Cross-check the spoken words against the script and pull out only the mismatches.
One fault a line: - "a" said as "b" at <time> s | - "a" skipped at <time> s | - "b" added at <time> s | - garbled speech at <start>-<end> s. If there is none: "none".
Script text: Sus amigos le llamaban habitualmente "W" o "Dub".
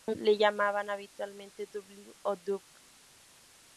- "amigos" skipped at 0.2 s